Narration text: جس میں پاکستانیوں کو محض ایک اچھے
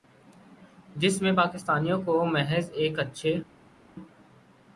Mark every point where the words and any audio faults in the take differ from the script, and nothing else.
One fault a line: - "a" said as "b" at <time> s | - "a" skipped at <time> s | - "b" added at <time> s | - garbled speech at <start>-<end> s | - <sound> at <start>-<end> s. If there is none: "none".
none